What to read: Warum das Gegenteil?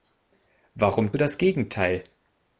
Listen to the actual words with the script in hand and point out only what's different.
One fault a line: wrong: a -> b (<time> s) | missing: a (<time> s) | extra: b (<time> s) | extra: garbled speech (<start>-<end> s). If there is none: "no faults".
no faults